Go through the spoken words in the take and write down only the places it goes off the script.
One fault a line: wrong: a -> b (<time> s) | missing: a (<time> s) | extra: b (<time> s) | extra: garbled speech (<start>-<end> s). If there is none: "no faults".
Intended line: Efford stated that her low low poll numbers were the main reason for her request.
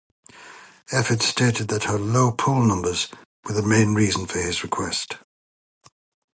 missing: low (2.3 s)
wrong: her -> his (4.4 s)